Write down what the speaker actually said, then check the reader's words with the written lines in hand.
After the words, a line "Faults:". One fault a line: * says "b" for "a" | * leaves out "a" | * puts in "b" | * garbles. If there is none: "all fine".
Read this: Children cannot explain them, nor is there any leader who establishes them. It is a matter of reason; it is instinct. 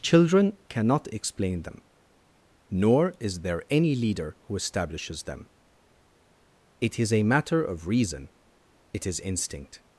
Children cannot explain them, nor is there any leader who establishes them. It is a matter of reason; it is instinct.
Faults:
all fine